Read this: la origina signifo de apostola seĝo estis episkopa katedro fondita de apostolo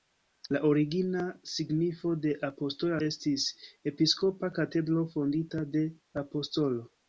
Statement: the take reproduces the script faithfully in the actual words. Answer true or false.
false